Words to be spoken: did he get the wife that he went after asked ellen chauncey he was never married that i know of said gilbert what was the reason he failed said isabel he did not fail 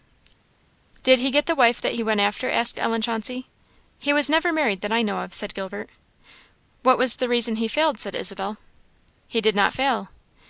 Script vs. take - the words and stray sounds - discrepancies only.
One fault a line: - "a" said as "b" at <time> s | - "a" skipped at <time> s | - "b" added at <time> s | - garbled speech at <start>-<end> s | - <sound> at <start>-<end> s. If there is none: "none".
none